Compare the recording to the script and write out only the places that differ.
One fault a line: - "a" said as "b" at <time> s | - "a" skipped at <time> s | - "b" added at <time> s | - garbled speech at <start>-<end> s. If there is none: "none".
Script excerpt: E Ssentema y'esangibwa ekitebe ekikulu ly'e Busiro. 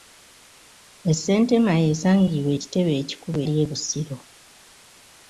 none